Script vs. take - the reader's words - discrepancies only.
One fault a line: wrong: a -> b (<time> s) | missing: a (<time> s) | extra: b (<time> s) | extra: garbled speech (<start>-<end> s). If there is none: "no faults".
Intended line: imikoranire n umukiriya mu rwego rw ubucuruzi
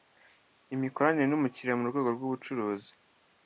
no faults